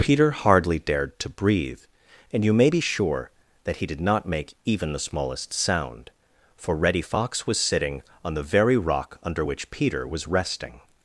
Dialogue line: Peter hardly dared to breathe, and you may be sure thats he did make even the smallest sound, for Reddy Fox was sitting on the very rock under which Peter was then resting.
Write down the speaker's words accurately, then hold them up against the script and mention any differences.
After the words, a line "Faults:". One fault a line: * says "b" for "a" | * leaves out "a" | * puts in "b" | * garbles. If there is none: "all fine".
Peter hardly dared to breathe, and you may be sure that he did not make even the smallest sound, for Reddy Fox was sitting on the very rock under which Peter was resting.
Faults:
* says "that" for "thats"
* puts in "not"
* leaves out "then"